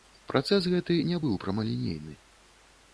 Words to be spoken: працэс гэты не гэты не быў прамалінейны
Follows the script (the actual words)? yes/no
no